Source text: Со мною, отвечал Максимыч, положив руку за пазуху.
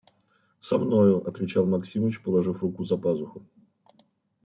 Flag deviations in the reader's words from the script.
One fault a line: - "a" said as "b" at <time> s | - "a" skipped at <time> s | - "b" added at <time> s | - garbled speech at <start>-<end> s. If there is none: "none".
none